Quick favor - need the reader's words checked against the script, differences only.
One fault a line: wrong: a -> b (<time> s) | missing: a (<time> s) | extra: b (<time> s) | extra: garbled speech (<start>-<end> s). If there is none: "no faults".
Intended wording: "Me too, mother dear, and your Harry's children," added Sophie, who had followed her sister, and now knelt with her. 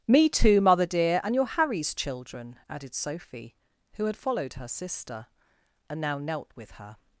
no faults